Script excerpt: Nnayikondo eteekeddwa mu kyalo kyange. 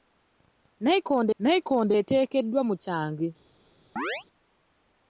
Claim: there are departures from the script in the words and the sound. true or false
true